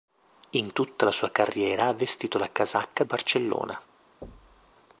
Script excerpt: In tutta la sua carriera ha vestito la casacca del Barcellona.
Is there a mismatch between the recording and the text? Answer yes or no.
yes